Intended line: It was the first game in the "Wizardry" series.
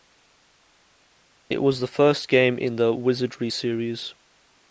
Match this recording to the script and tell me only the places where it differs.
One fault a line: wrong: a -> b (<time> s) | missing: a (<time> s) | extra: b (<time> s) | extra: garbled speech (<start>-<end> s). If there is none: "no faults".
no faults